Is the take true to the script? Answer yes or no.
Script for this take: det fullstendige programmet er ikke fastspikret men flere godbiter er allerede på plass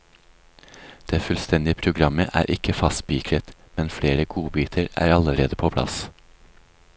yes